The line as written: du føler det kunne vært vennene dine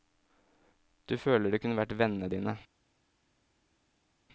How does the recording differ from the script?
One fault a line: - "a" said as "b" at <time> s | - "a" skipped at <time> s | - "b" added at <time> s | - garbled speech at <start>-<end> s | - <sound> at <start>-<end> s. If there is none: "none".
none